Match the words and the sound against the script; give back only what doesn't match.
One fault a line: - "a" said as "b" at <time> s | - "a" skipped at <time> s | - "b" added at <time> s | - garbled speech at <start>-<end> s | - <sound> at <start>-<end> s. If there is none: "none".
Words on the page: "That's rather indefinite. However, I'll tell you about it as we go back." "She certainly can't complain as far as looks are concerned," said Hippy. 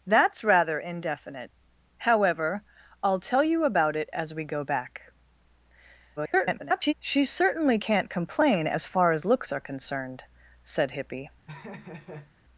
- garbled speech at 6.2-6.9 s
- laugh at 11.5-12.3 s